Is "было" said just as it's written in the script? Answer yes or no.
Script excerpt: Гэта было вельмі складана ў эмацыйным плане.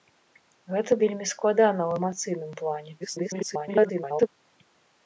no